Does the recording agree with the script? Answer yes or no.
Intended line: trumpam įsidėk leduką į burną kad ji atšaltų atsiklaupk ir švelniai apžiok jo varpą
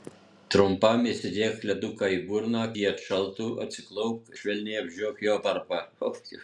no